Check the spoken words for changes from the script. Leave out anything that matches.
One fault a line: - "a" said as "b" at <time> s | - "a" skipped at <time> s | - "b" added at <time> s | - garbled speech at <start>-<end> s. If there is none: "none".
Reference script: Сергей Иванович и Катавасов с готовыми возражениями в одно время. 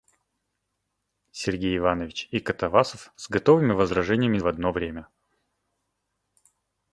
none